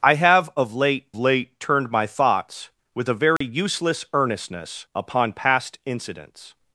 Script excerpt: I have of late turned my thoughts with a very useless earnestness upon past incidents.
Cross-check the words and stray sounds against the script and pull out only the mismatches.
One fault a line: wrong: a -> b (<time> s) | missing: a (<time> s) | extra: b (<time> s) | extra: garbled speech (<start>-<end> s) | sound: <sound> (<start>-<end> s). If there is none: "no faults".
extra: late (1.2 s)
sound: dropout (3.4-3.4 s)